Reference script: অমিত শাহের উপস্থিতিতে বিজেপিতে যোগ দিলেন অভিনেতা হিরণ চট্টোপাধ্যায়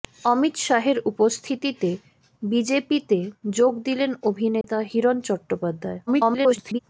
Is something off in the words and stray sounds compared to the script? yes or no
yes